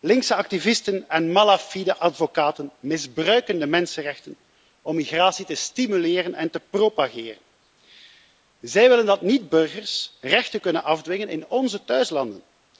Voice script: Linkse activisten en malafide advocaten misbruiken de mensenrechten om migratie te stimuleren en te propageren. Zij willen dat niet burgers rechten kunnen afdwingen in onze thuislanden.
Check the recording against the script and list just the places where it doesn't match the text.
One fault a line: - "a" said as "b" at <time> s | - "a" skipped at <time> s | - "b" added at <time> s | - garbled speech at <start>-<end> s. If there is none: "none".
none